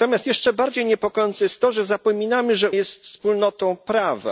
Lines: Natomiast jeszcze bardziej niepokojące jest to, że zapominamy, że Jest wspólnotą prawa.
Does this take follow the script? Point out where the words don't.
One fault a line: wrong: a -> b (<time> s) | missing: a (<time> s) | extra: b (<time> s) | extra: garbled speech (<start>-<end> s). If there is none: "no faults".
no faults